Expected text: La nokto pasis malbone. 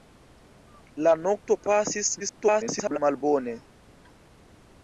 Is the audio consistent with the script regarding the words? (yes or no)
no